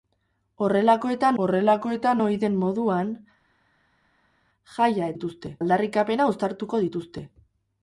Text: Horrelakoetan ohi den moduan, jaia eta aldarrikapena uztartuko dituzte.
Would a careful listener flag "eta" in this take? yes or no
yes